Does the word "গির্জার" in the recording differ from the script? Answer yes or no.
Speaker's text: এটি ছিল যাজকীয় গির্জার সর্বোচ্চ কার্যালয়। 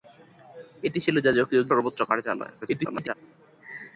yes